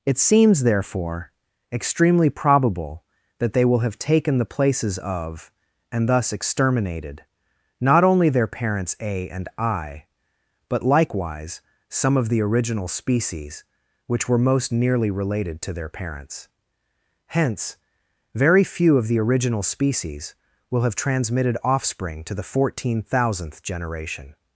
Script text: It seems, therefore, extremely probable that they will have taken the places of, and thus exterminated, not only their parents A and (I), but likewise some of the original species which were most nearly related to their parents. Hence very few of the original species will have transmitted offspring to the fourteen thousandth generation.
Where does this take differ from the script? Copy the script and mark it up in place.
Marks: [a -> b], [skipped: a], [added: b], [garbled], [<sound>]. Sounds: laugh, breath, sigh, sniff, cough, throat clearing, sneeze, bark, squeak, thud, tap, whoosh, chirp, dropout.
It seems, therefore, extremely probable that they will have taken the places of, and thus exterminated, not only their parents A and (I), but likewise some of the original species which were most nearly related to their parents. Hence very few of the original species will have transmitted offspring to the fourteen thousandth generation.